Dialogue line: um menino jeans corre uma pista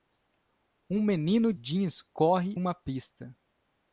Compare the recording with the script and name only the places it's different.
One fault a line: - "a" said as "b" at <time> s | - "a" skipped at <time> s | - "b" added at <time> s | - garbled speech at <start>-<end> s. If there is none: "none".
none